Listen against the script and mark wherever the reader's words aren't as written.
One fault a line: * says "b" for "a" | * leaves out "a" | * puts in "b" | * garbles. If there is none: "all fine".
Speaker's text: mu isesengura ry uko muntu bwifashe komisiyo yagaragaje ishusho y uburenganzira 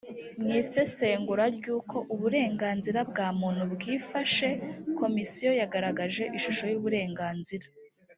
* puts in "uburenganzira bwa"